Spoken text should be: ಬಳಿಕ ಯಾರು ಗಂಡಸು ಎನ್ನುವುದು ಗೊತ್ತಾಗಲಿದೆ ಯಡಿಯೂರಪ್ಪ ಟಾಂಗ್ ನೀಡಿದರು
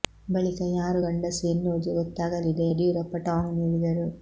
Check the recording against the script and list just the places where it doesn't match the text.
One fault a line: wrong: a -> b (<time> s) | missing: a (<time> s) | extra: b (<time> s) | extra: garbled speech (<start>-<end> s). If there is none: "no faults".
no faults